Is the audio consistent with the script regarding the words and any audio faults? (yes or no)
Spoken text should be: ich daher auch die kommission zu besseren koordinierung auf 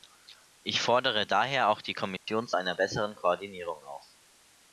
no